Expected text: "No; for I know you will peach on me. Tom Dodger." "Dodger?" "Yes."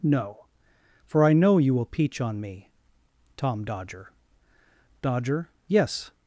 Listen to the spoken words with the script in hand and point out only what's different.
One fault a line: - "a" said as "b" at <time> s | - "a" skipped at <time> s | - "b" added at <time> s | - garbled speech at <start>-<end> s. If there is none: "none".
none